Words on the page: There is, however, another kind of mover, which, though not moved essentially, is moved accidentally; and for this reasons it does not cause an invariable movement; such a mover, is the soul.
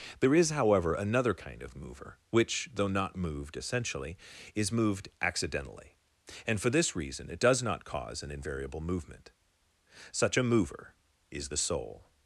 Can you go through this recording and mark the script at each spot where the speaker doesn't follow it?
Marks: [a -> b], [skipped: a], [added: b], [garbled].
There is, however, another kind of mover, which, though not moved essentially, is moved accidentally; and for this [reasons -> reason] it does not cause an invariable movement; such a mover, is the soul.